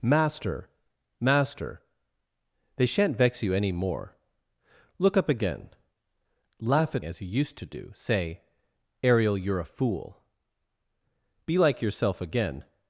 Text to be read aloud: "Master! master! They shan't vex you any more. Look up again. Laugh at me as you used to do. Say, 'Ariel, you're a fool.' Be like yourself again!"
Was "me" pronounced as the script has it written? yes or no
no